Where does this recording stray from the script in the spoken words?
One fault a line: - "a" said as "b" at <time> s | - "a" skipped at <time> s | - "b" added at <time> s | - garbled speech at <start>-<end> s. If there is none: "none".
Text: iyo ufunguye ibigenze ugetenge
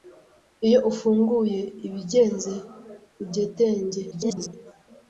- garbled speech at 4.1-4.5 s